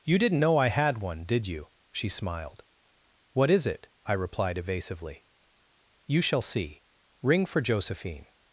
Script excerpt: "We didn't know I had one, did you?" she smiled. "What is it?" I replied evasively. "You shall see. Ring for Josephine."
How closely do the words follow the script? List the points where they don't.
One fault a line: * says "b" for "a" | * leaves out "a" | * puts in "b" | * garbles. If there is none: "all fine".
* says "You" for "We"